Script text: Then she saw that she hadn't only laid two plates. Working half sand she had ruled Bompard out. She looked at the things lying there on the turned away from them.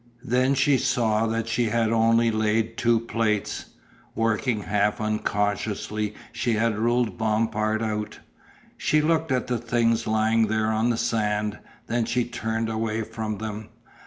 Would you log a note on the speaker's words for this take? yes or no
yes